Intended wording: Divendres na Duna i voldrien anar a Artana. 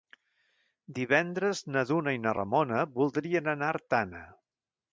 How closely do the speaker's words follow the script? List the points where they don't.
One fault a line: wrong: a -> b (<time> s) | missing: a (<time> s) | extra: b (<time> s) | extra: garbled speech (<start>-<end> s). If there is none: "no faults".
extra: na Ramona (2.2 s)